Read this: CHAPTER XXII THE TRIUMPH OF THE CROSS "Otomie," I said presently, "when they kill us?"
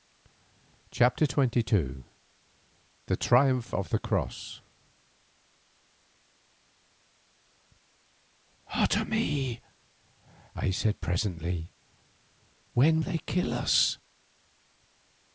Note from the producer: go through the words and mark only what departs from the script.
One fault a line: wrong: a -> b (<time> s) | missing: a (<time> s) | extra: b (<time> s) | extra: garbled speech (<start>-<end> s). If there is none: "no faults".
no faults